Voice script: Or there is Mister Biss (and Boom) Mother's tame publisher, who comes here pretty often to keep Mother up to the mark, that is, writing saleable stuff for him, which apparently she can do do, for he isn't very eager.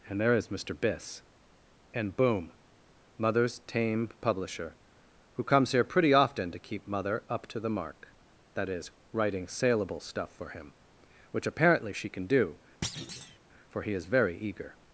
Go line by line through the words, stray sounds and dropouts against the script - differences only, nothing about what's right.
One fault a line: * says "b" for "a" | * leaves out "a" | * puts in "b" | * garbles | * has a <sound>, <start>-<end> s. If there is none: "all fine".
* says "And" for "Or"
* leaves out "do"
* has a thud, 12.8-13.4 s
* says "is" for "isn't"